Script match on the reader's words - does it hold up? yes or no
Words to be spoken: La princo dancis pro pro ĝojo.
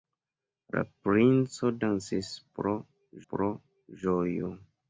yes